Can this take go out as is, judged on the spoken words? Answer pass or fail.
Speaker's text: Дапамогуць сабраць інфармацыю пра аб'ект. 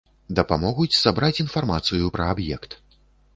pass